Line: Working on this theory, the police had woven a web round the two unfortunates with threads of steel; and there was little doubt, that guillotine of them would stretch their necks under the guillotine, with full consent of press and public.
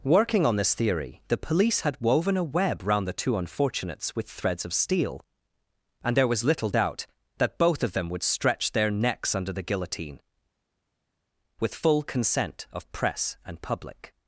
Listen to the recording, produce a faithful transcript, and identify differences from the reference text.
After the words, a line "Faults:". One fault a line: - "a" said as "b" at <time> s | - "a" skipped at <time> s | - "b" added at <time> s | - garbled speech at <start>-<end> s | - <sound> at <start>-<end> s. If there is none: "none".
Working on this theory, the police had woven a web round the two unfortunates with threads of steel; and there was little doubt, that both of them would stretch their necks under the guillotine, with full consent of press and public.
Faults:
- "guillotine" said as "both" at 7.6 s